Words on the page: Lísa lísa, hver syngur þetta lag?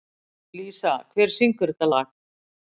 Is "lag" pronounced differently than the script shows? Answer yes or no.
no